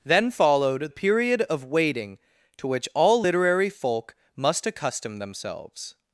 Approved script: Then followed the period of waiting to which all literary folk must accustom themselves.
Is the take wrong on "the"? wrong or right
wrong